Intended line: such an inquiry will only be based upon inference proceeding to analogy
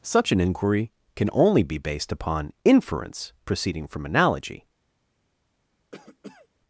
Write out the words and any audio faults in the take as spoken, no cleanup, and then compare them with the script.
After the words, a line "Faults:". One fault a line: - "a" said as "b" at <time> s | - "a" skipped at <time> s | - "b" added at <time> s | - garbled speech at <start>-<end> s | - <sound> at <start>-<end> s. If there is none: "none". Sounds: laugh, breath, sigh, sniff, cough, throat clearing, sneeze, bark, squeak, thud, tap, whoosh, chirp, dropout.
such an inquiry can only be based upon inference proceeding from analogy
Faults:
- "will" said as "can" at 1.1 s
- "to" said as "from" at 3.9 s
- cough at 5.9-6.5 s